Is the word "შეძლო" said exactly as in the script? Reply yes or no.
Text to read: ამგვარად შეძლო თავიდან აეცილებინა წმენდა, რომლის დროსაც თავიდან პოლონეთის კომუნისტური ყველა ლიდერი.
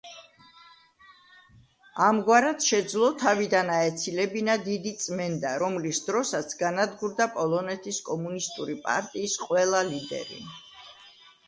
yes